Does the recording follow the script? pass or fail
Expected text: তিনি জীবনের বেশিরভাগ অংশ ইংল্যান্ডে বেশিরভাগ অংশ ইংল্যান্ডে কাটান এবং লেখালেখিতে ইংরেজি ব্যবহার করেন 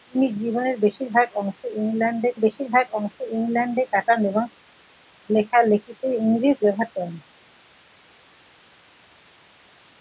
pass